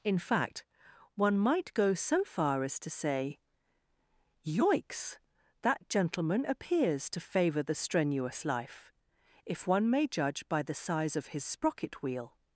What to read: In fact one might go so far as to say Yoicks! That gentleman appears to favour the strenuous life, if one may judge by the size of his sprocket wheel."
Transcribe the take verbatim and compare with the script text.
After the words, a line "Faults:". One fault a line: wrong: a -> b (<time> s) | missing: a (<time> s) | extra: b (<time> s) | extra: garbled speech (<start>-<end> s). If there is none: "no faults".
In fact one might go so far as to say Yoicks! That gentleman appears to favour the strenuous life, if one may judge by the size of his sprocket wheel."
Faults:
no faults